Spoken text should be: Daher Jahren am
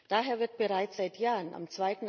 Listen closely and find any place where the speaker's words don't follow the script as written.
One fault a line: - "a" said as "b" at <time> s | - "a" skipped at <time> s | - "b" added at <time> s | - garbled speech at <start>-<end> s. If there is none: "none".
- "wird bereits seit" added at 0.4 s